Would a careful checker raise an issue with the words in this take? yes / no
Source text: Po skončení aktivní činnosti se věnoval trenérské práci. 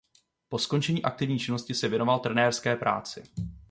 no